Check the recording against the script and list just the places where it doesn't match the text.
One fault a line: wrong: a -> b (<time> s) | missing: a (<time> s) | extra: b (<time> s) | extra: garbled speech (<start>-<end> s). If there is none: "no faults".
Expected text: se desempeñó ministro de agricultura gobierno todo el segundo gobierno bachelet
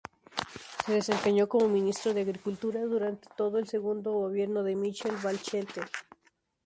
extra: como (1.5 s)
wrong: gobierno -> durante (2.9 s)
extra: de michelle (4.6 s)